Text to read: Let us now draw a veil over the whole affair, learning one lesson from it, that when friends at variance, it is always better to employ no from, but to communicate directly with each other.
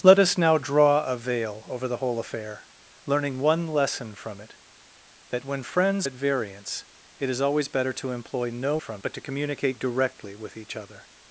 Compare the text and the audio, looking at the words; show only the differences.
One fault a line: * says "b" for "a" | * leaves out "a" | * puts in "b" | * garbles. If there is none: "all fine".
all fine